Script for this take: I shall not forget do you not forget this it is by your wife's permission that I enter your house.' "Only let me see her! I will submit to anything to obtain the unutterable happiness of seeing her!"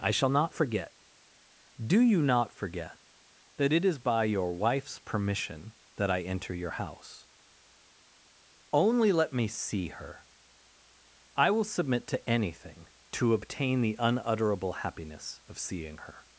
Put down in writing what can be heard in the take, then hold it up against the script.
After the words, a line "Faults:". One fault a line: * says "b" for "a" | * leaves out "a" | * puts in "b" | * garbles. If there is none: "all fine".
I shall not forget do you not forget that it is by your wife's permission that I enter your house.' "Only let me see her! I will submit to anything to obtain the unutterable happiness of seeing her!"
Faults:
* says "that" for "this"